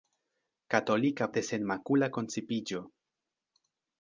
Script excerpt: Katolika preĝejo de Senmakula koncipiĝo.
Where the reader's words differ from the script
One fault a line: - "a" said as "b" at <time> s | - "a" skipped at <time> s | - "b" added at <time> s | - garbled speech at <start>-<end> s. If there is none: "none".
- "preĝejo" skipped at 1.2 s